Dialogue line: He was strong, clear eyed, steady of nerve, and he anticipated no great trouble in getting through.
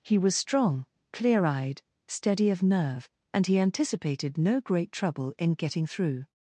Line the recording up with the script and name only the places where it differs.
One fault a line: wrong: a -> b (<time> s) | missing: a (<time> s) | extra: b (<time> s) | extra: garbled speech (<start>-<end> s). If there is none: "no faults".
no faults